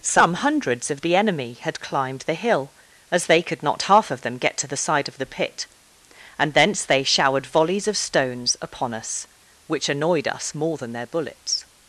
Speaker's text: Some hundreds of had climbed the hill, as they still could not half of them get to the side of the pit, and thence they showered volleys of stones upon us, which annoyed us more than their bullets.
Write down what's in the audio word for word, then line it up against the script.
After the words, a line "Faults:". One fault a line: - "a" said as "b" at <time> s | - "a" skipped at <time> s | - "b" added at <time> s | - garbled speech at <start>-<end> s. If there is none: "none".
Some hundreds of the enemy had climbed the hill, as they could not half of them get to the side of the pit, and thence they showered volleys of stones upon us, which annoyed us more than their bullets.
Faults:
- "the enemy" added at 1.0 s
- "still" skipped at 3.4 s